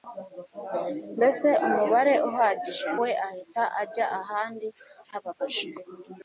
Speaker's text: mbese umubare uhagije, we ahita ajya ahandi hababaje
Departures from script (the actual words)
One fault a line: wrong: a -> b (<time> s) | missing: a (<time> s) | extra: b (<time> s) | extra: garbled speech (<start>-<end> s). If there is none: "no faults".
no faults